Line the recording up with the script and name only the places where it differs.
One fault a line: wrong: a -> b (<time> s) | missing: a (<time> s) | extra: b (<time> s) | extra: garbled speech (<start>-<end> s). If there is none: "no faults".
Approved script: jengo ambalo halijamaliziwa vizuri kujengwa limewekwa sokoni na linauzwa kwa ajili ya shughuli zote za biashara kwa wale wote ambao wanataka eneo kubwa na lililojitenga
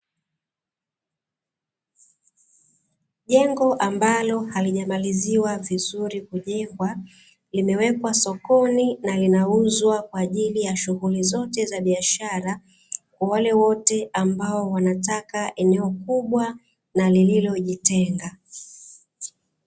no faults